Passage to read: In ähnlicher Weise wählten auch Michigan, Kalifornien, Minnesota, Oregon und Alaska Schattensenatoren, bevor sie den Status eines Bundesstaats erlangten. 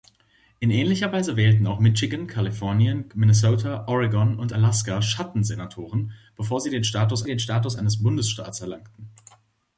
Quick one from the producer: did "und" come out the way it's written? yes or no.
yes